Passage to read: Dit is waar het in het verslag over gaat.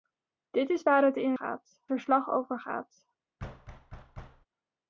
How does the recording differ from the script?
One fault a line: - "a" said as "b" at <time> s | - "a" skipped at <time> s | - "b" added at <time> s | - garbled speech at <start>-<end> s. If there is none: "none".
- "het" said as "gaat" at 1.3 s